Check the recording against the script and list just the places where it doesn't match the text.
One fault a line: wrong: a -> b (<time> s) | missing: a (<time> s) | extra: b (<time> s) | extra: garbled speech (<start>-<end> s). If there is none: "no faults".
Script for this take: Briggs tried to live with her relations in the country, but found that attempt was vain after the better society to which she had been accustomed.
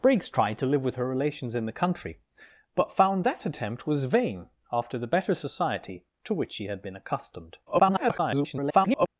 extra: garbled speech (7.7-9.1 s)